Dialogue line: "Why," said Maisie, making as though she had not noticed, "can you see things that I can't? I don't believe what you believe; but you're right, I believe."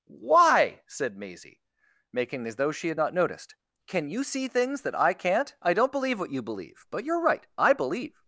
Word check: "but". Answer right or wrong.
right